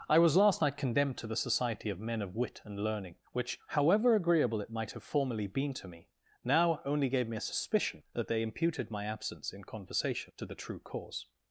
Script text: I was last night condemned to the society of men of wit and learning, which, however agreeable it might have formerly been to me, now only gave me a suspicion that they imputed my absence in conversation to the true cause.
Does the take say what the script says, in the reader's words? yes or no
yes